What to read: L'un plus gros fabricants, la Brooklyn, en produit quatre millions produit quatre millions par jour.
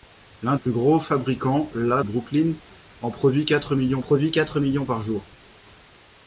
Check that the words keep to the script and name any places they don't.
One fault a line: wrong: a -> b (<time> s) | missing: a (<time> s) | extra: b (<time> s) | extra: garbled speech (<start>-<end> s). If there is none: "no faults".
no faults